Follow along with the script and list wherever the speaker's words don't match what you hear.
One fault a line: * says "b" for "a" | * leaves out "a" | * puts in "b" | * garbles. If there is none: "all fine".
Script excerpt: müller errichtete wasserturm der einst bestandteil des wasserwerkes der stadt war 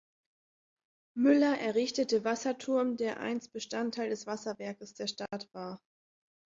all fine